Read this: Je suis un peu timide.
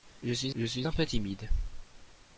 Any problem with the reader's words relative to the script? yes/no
yes